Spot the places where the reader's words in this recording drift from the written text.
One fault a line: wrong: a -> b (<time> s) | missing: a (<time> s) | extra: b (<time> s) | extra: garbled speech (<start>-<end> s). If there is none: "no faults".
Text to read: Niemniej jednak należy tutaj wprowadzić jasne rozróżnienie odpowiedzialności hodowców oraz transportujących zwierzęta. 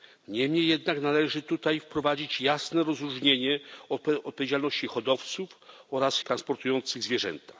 no faults